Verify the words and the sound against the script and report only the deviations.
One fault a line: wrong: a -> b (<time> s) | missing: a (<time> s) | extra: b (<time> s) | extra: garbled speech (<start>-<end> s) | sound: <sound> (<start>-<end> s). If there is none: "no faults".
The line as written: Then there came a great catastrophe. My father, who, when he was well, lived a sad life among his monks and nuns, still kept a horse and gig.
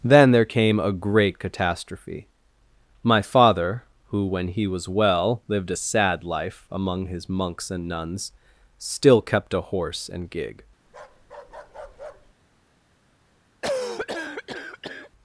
sound: bark (10.9-12.3 s)
sound: cough (13.6-15.1 s)